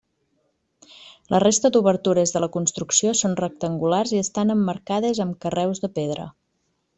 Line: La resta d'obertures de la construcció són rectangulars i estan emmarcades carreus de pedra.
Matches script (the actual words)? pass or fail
fail